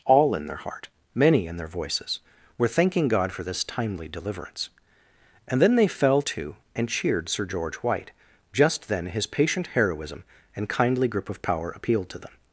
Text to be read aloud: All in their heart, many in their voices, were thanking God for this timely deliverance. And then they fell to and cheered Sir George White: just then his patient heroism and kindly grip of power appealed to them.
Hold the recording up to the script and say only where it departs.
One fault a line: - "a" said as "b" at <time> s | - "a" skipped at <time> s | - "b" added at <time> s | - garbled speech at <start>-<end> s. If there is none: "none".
none